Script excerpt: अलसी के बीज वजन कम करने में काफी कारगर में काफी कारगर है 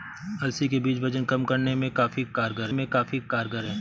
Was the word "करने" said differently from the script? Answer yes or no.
no